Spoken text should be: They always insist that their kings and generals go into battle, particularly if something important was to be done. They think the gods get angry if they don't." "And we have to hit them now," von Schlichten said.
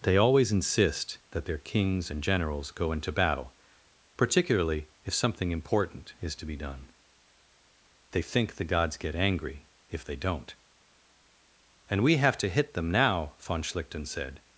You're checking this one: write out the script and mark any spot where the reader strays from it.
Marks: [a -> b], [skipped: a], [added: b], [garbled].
They always insist that their kings and generals go into battle, particularly if something important [was -> is] to be done. They think the gods get angry if they don't." "And we have to hit them now," von Schlichten said.